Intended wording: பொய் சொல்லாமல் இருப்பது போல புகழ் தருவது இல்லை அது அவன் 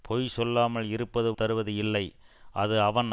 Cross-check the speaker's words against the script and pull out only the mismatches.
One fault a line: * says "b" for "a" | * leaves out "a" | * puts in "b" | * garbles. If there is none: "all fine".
* leaves out "போல புகழ்"